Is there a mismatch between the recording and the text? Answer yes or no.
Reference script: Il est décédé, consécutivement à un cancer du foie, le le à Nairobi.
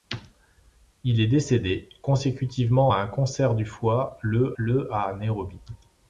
no